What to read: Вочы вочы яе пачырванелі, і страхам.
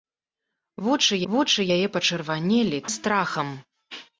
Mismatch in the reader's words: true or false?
false